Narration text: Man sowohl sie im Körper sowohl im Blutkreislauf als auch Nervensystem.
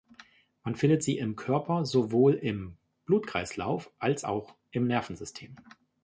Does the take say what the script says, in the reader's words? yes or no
no